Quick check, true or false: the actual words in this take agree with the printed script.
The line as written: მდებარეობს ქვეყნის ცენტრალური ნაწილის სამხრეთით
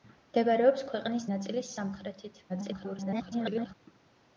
false